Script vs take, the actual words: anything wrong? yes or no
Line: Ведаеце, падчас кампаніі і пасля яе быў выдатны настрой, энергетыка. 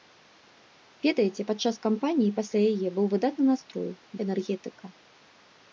no